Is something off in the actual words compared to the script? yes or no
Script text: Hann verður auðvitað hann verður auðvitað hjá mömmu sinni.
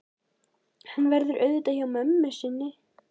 yes